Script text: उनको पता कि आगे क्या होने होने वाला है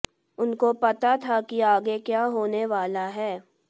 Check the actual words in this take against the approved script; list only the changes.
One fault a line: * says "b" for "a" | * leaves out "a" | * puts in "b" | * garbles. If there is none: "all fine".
* puts in "था"
* leaves out "होने"